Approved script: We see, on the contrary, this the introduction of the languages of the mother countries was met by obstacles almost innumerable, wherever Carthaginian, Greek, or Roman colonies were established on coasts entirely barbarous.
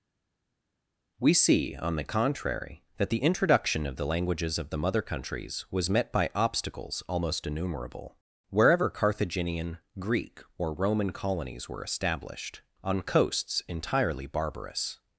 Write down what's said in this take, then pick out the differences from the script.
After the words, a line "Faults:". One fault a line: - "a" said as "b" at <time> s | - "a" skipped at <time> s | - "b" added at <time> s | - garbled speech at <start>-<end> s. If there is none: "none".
We see, on the contrary, that the introduction of the languages of the mother countries was met by obstacles almost innumerable, wherever Carthaginian, Greek, or Roman colonies were established on coasts entirely barbarous.
Faults:
- "this" said as "that" at 3.0 s